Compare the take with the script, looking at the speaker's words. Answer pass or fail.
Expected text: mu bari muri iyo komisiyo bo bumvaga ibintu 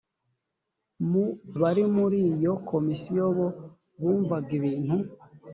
pass